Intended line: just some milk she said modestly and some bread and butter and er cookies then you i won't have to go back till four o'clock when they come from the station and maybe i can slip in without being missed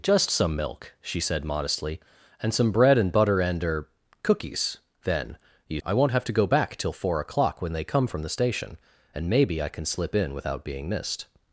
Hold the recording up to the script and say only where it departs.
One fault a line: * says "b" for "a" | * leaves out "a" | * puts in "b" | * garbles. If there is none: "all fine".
all fine